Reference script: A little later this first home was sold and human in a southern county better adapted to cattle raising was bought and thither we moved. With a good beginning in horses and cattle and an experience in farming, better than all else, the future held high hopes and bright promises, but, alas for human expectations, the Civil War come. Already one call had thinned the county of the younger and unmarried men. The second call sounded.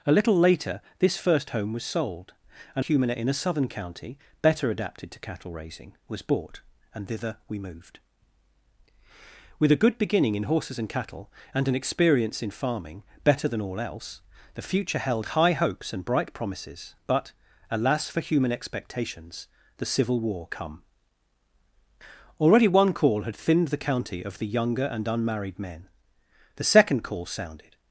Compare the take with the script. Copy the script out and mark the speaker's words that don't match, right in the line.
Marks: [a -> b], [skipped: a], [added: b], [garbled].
A little later this first home was sold and human in a southern county better adapted to cattle raising was bought and thither we moved. With a good beginning in horses and cattle and an experience in farming, better than all else, the future held high hopes and bright promises, but, alas for human expectations, the Civil War come. Already one call had thinned the county of the younger and unmarried men. The second call sounded.